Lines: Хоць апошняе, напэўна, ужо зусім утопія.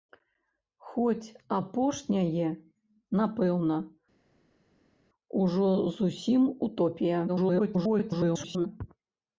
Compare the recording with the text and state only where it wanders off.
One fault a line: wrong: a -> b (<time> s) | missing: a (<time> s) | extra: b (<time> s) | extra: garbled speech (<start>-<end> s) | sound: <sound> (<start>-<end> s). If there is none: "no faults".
extra: garbled speech (7.3-8.7 s)